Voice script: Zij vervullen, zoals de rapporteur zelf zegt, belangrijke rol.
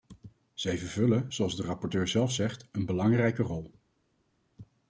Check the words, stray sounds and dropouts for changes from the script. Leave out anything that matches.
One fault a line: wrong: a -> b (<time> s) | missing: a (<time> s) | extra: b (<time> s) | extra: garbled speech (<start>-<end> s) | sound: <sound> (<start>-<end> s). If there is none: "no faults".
extra: een (2.7 s)